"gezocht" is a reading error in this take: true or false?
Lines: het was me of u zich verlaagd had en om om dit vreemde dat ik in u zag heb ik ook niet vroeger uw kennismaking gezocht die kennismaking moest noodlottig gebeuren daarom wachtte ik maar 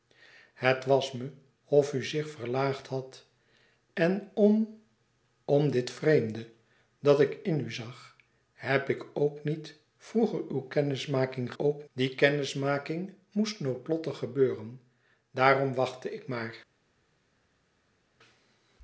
true